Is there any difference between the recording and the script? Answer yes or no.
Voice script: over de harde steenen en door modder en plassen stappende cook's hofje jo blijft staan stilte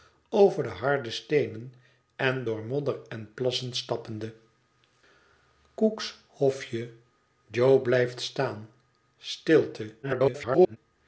yes